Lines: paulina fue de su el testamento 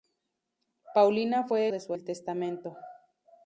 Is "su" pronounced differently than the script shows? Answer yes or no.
no